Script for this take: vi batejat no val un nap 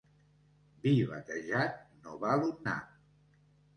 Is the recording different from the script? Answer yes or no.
no